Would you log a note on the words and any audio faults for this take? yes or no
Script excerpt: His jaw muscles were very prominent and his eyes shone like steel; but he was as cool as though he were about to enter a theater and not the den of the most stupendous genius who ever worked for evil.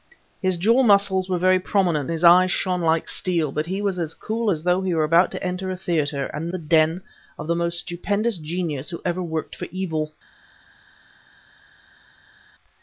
yes